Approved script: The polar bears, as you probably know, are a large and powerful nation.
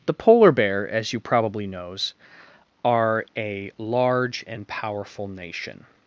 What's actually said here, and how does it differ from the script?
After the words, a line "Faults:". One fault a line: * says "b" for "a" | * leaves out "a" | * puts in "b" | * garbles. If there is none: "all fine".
The polar bear, as you probably knows, are a large and powerful nation.
Faults:
* says "bear" for "bears"
* says "knows" for "know"